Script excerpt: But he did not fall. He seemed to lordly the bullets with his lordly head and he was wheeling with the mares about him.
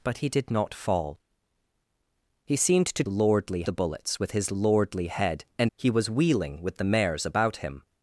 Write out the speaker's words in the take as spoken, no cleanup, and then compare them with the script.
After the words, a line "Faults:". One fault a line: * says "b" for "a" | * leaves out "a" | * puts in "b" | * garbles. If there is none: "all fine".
But he did not fall. He seemed to lordly the bullets with his lordly head and he was wheeling with the mares about him.
Faults:
all fine